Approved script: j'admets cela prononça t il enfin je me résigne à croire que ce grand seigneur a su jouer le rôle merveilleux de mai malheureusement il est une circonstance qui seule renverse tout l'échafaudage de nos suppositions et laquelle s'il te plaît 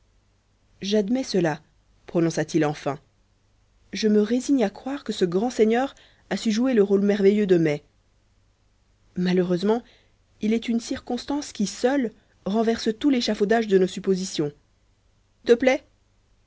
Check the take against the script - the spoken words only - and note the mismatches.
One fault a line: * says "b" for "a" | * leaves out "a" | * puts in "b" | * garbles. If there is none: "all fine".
* leaves out "et laquelle s'il"